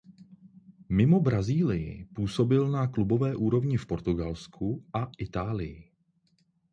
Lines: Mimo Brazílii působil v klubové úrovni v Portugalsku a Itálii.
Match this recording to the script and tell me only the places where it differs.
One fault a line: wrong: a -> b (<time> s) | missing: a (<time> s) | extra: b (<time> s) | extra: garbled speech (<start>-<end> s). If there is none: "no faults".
wrong: v -> na (2.7 s)